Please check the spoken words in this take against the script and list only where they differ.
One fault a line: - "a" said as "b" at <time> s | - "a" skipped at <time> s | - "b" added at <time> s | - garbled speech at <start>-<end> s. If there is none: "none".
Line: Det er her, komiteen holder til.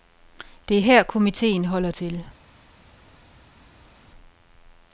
none